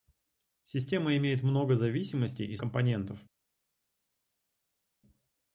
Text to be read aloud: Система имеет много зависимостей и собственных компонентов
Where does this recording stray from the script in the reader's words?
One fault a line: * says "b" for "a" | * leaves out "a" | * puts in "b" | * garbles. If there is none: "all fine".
* leaves out "собственных"